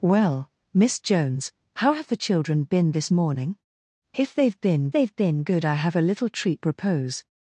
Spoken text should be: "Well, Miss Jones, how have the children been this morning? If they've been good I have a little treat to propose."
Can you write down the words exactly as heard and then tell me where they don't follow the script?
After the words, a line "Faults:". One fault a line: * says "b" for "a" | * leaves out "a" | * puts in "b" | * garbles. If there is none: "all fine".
"Well, Miss Jones, how have the children been this morning? If they've been they've been good I have a little treat propose."
Faults:
* puts in "they've been"
* leaves out "to"